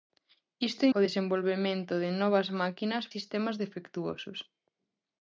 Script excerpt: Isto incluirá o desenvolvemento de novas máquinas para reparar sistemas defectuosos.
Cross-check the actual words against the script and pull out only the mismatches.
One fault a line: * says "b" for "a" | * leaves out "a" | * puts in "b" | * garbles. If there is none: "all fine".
* leaves out "incluirá"
* leaves out "para reparar"